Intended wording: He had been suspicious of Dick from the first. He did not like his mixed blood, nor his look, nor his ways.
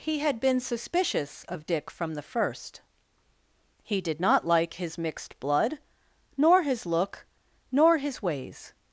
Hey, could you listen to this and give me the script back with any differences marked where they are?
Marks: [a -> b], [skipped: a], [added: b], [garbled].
He had been suspicious of Dick from the first. He did not like his mixed blood, nor his look, nor his ways.